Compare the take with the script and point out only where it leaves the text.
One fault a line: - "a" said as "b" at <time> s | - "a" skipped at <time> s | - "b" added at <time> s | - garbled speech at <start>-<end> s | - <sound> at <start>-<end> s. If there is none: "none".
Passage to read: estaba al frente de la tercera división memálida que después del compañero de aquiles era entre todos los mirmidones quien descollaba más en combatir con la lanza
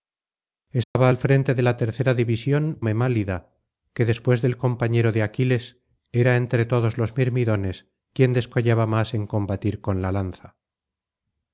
- dropout at 0.8-1.0 s